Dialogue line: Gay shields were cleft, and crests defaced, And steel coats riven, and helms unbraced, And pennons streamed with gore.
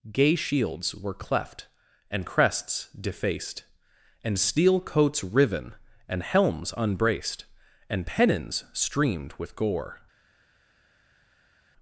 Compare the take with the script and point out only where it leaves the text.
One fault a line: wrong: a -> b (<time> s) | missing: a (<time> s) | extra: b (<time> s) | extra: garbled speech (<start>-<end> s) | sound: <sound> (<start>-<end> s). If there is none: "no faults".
no faults